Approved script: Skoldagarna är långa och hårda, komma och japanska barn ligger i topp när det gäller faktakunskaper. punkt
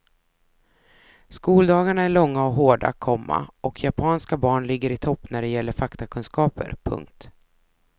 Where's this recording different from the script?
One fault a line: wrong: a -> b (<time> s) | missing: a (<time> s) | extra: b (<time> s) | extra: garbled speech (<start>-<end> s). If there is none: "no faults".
no faults